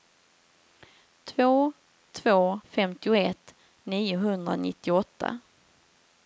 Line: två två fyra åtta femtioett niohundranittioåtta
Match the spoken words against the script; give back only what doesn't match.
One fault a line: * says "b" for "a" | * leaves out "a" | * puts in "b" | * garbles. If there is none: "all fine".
* leaves out "fyra åtta"